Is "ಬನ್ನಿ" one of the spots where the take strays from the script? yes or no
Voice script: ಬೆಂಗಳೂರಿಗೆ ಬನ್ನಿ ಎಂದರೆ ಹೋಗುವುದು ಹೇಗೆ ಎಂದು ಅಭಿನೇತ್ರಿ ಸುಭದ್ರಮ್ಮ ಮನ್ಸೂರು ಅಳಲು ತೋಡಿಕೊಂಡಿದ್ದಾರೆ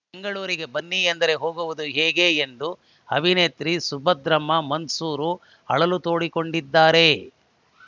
no